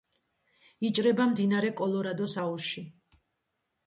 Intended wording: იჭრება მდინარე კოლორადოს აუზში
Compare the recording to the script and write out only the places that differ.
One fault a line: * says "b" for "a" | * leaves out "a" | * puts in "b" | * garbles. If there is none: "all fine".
all fine